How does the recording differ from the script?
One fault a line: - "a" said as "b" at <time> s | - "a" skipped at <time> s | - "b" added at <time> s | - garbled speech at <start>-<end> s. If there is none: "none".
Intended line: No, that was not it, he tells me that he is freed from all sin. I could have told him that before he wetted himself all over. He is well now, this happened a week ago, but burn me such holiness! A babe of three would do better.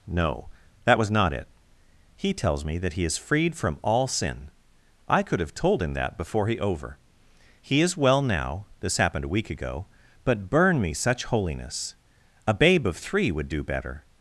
- "wetted himself all" skipped at 6.6 s